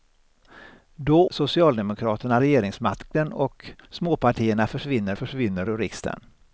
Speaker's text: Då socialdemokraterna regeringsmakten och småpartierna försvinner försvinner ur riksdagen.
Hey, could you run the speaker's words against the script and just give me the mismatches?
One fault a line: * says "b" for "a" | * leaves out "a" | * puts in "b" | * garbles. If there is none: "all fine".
all fine